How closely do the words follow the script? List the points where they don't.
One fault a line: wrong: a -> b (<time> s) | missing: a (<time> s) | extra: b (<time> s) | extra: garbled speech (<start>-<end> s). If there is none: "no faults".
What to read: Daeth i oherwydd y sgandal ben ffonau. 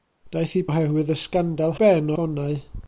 no faults